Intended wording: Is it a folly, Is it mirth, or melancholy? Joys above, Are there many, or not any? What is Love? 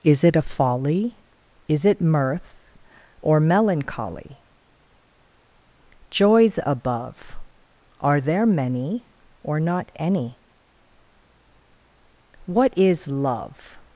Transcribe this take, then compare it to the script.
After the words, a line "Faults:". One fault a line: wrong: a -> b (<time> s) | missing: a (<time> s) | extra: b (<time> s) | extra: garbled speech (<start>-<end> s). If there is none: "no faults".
Is it a folly, Is it mirth, or melancholy? Joys above, Are there many, or not any? What is Love?
Faults:
no faults